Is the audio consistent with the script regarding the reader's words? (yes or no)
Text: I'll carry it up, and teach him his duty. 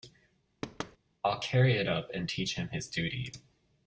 yes